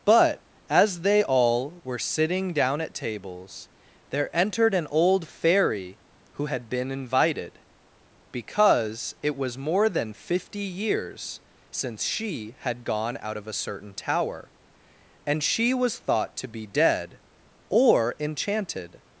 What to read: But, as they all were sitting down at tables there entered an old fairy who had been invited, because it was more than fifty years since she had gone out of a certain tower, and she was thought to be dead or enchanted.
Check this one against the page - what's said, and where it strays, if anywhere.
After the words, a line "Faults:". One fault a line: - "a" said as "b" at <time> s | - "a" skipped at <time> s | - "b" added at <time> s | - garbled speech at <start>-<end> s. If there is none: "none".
But, as they all were sitting down at tables there entered an old fairy who had been invited, because it was more than fifty years since she had gone out of a certain tower, and she was thought to be dead or enchanted.
Faults:
none